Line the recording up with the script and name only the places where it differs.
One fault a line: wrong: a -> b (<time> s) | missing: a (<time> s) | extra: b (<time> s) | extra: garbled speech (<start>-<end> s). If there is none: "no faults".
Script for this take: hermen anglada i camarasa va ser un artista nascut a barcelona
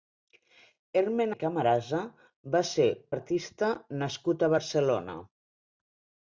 missing: anglada (1.4 s)
missing: un (2.9 s)